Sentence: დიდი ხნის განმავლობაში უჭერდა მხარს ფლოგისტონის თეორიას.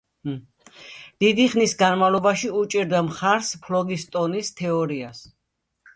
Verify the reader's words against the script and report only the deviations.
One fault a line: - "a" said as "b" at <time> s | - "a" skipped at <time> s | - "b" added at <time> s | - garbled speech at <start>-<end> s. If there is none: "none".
none